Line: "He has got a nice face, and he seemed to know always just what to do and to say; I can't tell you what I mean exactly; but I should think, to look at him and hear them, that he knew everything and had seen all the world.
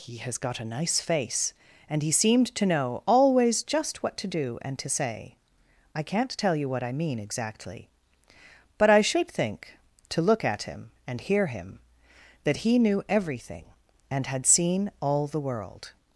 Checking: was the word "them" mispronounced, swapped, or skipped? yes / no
yes